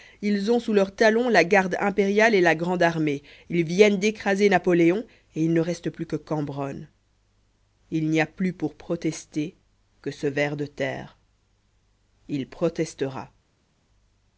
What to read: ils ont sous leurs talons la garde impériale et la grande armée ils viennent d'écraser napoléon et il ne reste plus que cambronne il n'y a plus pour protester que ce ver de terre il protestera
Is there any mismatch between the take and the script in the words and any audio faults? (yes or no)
no